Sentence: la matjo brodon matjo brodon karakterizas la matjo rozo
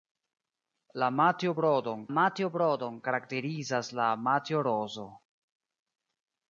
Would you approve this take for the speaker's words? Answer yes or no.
yes